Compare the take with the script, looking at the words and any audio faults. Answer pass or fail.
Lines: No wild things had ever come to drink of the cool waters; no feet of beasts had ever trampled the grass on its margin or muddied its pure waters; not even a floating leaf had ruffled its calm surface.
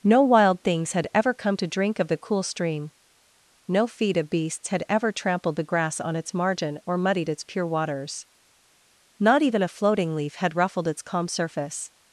fail